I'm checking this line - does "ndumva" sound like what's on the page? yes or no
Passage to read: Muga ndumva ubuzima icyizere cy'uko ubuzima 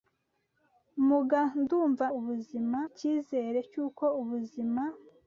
yes